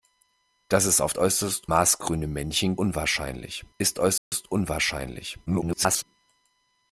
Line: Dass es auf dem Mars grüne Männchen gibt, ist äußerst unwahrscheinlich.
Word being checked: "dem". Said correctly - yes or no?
no